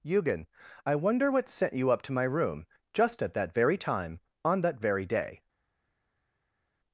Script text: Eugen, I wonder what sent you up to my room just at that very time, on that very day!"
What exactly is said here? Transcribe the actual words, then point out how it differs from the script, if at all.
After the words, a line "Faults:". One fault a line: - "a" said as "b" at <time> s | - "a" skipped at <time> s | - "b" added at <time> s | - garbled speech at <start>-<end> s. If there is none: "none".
Eugen, I wonder what sent you up to my room just at that very time, on that very day!"
Faults:
none